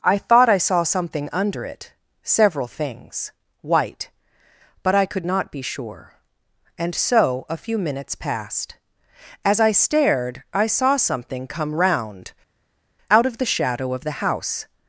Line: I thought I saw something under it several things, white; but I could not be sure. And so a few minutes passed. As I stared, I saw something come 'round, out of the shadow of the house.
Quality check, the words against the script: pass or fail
pass